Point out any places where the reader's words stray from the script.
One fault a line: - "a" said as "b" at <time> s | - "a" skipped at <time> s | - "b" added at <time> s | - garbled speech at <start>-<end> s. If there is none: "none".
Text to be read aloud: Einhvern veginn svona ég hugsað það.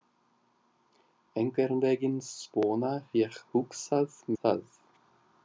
none